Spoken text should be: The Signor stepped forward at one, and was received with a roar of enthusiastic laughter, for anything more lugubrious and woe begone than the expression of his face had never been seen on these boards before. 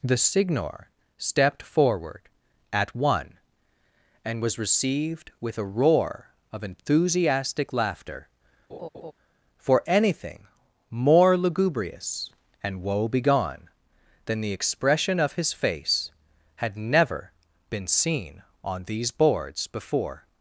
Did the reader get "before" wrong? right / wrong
right